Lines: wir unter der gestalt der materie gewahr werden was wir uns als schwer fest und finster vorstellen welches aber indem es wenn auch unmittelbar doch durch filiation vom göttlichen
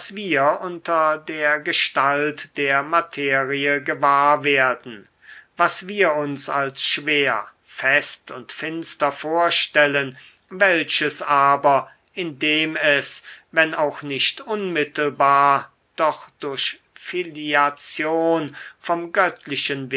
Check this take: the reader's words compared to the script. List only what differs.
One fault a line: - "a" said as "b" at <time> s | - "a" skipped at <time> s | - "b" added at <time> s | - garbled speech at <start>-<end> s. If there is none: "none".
- "nicht" added at 14.0 s